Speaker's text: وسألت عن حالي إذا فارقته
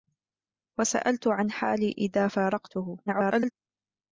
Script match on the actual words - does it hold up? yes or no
no